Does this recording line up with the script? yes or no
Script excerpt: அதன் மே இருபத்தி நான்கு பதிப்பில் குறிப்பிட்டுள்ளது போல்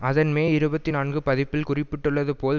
yes